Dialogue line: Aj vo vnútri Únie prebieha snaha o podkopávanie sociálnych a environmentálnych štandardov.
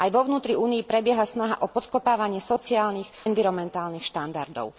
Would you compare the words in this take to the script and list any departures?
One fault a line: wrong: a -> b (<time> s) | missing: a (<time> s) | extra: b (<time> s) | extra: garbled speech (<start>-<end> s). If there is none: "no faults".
missing: a (3.0 s)